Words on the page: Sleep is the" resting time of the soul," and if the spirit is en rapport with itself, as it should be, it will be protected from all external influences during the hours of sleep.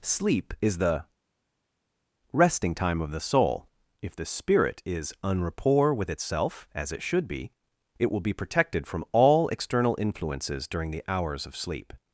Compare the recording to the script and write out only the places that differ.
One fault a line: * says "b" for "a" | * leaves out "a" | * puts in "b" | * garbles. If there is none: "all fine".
* leaves out "and"